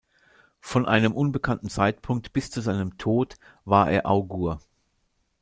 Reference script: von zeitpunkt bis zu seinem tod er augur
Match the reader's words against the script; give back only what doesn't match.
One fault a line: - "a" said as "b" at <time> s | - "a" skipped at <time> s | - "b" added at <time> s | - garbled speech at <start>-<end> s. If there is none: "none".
- "einem unbekannten" added at 0.9 s
- "war" added at 3.6 s